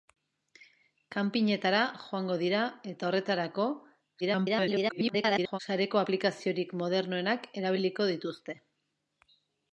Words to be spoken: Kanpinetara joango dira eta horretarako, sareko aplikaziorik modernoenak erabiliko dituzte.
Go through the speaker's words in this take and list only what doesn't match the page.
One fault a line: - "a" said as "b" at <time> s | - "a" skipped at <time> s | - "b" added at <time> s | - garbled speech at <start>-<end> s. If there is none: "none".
- garbled speech at 4.2-5.6 s